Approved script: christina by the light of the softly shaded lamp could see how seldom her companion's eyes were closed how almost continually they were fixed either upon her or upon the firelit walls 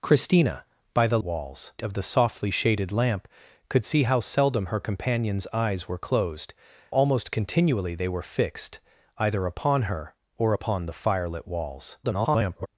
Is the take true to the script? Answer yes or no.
no